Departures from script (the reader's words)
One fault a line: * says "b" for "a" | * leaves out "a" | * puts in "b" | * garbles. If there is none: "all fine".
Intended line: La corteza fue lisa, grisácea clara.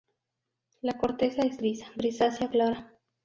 * says "es" for "fue"